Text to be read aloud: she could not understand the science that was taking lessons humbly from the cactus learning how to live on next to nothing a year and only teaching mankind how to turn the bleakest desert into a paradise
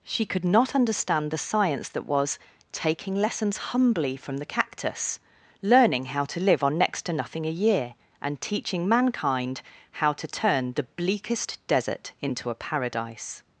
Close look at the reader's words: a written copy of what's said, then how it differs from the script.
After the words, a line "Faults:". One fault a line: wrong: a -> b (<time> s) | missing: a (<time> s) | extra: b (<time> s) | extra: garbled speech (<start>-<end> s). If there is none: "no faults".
she could not understand the science that was taking lessons humbly from the cactus learning how to live on next to nothing a year and teaching mankind how to turn the bleakest desert into a paradise
Faults:
missing: only (8.4 s)